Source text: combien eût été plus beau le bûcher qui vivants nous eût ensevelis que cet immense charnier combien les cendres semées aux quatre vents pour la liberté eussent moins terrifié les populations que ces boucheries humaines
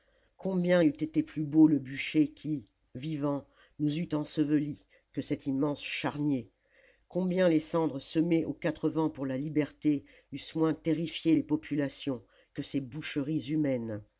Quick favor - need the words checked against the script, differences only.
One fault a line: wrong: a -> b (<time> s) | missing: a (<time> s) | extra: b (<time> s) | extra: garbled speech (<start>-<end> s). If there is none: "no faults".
no faults